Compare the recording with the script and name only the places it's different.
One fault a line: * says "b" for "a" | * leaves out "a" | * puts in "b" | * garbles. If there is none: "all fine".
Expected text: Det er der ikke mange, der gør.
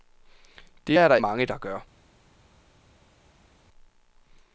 * leaves out "ikke"